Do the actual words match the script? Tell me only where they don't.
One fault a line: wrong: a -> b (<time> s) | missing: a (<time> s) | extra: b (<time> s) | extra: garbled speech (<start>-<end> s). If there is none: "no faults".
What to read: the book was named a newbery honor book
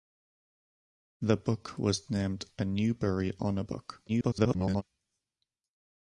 extra: garbled speech (4.1-4.8 s)